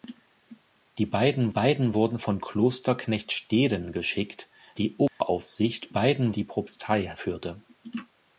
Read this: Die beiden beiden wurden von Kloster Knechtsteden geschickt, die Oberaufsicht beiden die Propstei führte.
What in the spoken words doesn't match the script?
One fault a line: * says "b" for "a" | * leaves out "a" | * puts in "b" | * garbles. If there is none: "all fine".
all fine